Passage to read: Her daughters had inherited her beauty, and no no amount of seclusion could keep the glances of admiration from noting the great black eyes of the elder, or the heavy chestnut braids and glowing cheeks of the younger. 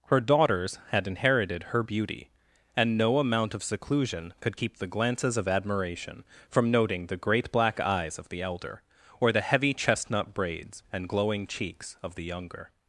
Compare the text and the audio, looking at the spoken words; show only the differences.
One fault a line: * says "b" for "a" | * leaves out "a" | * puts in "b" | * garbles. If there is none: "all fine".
* leaves out "no"